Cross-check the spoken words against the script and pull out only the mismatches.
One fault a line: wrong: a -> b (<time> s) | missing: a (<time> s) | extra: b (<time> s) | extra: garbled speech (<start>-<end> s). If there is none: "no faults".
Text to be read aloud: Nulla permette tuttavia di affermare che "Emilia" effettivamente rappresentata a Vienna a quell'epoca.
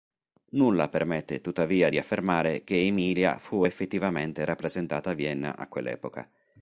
extra: fu (3.4 s)